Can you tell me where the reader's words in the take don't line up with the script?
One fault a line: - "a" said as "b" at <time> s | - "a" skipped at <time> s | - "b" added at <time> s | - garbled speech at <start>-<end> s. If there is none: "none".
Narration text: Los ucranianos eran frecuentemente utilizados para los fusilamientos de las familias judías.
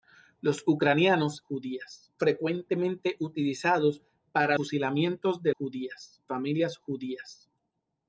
- "eran" said as "judías" at 1.4 s
- "los" skipped at 4.6 s
- "las" said as "judías" at 5.5 s